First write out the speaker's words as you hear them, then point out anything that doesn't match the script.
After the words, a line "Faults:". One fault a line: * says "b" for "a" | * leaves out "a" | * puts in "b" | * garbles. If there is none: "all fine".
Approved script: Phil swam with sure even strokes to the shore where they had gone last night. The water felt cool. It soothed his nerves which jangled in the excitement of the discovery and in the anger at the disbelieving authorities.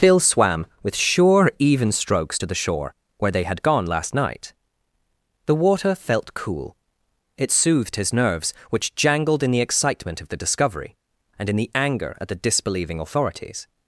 Phil swam with sure even strokes to the shore where they had gone last night. The water felt cool. It soothed his nerves which jangled in the excitement of the discovery and in the anger at the disbelieving authorities.
Faults:
all fine